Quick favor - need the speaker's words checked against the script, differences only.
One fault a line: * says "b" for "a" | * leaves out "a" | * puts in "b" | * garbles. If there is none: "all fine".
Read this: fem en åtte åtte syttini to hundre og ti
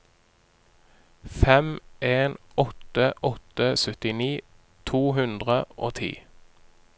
all fine